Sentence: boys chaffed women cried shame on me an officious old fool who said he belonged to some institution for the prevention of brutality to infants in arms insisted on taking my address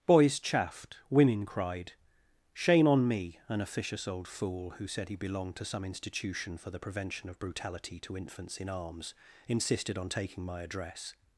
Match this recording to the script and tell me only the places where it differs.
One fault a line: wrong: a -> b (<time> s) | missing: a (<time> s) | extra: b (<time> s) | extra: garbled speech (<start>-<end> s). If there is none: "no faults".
no faults